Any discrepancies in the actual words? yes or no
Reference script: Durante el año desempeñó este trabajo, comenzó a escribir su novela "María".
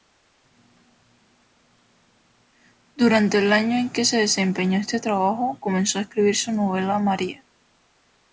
yes